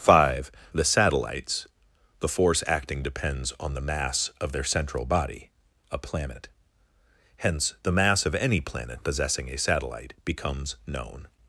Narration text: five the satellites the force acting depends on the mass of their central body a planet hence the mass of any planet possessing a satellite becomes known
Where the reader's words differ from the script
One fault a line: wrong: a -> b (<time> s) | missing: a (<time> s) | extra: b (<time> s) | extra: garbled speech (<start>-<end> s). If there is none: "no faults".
no faults